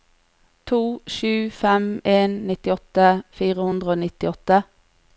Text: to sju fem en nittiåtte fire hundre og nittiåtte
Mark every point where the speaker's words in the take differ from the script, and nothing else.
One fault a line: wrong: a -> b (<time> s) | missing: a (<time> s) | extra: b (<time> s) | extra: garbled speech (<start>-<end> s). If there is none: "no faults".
no faults